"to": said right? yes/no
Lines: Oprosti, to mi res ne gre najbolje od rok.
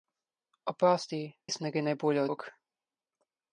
no